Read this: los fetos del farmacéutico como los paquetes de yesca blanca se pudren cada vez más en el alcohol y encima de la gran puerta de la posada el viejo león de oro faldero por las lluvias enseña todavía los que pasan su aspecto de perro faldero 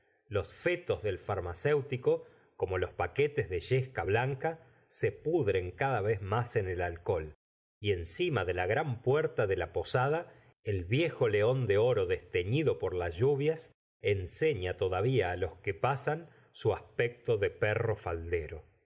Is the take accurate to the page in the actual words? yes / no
no